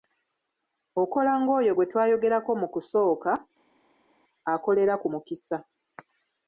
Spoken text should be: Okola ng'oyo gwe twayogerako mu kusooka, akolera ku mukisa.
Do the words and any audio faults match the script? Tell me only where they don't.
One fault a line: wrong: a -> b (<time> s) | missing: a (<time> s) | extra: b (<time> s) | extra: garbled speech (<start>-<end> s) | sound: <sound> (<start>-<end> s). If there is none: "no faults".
no faults